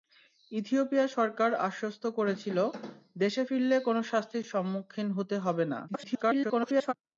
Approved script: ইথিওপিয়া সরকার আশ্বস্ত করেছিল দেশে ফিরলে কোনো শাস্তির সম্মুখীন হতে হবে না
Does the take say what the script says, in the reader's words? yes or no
no